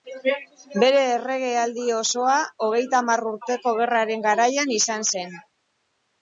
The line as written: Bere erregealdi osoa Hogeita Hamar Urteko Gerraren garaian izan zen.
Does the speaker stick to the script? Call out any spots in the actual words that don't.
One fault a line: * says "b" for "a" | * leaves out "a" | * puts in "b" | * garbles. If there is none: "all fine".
all fine